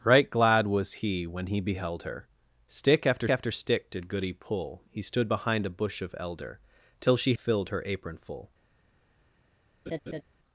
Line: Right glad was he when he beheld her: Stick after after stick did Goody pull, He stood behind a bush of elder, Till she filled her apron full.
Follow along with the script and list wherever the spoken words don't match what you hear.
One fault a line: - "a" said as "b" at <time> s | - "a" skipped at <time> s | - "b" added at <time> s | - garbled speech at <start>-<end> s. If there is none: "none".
none